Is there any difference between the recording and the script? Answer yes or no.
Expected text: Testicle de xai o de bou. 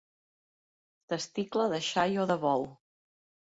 no